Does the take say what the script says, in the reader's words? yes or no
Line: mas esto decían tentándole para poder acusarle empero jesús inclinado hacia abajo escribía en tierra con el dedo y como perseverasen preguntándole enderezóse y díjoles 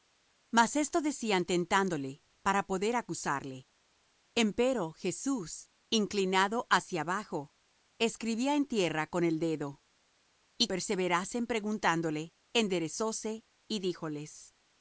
no